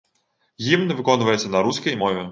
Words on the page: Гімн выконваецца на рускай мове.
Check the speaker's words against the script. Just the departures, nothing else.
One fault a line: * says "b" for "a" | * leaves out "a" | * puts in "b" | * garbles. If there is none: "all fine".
all fine